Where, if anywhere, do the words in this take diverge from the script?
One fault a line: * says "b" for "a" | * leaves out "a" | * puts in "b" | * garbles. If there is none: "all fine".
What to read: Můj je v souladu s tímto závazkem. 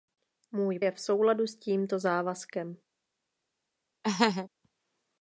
all fine